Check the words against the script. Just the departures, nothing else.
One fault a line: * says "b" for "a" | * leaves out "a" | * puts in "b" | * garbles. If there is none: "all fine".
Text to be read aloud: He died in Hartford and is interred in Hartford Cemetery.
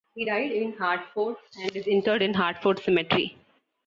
all fine